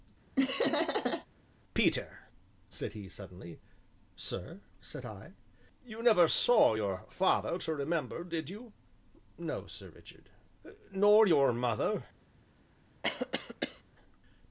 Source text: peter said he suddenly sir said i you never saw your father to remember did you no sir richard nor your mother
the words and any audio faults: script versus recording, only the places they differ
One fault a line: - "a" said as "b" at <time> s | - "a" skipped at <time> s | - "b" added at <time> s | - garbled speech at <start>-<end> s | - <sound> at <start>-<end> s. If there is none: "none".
- laugh at 0.4-1.3 s
- cough at 13.0-13.8 s